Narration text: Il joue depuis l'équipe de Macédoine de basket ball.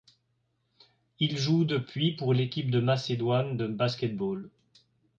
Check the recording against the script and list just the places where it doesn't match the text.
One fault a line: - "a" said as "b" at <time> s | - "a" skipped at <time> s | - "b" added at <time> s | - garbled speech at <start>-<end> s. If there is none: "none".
- "pour" added at 2.1 s